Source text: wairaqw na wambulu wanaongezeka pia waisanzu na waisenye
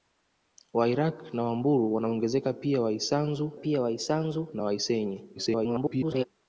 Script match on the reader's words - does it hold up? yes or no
no